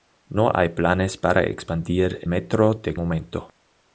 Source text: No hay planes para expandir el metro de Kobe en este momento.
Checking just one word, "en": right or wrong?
wrong